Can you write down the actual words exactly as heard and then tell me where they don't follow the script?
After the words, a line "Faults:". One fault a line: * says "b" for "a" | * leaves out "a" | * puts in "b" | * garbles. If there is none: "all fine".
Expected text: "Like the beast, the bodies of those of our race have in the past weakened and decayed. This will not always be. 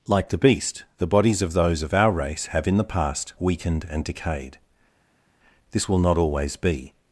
"Like the beast, the bodies of those of our race have in the past weakened and decayed. This will not always be.
Faults:
all fine